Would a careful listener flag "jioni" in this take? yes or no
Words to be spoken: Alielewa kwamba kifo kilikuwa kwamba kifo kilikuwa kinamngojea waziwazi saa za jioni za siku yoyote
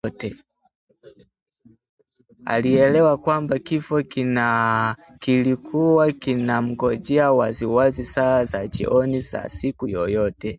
no